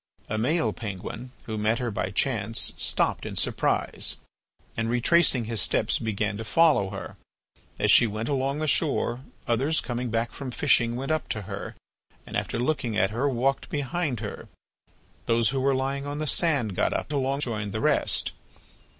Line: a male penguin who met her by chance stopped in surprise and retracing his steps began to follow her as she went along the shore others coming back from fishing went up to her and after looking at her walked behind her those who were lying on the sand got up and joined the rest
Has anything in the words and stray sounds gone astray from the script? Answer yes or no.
yes